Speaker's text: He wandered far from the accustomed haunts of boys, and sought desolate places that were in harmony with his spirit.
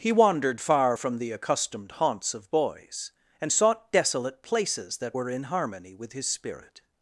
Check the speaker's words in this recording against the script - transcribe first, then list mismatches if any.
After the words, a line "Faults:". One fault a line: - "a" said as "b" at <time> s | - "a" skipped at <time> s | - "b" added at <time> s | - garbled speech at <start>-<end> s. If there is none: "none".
He wandered far from the accustomed haunts of boys, and sought desolate places that were in harmony with his spirit.
Faults:
none